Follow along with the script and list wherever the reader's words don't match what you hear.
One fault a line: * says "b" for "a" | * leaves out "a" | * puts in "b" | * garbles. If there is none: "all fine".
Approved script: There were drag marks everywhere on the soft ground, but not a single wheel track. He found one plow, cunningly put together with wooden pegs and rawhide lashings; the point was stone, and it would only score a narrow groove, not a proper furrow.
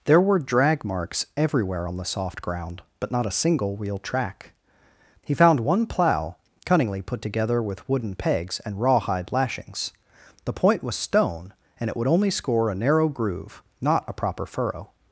all fine